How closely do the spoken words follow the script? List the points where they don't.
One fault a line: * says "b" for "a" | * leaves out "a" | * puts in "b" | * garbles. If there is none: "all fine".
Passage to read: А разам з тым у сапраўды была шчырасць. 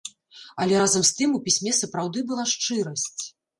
* says "Але" for "А"
* puts in "пісьме"